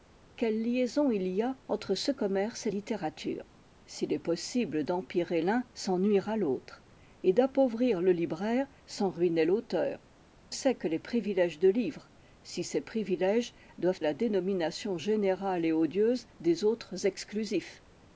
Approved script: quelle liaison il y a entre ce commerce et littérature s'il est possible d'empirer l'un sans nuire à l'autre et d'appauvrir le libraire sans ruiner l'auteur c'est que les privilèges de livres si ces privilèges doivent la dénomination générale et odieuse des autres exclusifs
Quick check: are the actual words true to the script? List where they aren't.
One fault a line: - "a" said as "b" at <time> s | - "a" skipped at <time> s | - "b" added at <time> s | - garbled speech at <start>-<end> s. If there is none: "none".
none